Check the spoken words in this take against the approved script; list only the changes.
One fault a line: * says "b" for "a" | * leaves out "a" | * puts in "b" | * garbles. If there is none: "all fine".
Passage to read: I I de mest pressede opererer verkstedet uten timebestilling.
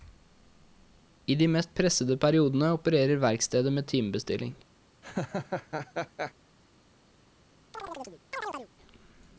* leaves out "I"
* puts in "periodene"
* says "med" for "uten"